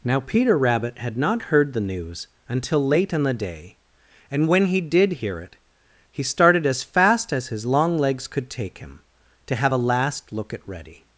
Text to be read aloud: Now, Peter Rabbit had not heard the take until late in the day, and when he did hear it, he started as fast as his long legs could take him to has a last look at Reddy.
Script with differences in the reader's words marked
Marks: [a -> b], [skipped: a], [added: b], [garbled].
Now, Peter Rabbit had not heard the [take -> news] until late in the day, and when he did hear it, he started as fast as his long legs could take him to [has -> have] a last look at Reddy.